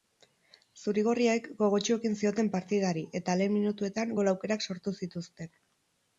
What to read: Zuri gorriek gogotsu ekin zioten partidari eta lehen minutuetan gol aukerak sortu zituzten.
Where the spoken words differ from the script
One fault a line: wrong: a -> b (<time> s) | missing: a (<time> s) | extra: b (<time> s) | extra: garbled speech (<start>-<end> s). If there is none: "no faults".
no faults